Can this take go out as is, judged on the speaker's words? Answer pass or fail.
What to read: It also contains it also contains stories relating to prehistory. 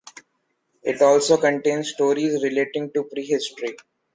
fail